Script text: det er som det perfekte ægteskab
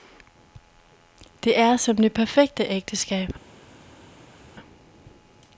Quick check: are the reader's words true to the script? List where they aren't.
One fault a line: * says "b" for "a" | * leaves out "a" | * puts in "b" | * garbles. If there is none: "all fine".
all fine